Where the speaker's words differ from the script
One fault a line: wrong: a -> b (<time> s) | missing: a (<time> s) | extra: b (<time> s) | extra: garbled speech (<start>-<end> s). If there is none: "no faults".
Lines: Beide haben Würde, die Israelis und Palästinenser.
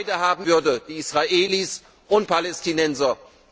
no faults